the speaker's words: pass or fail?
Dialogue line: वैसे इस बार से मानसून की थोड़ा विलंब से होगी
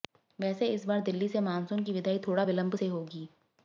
fail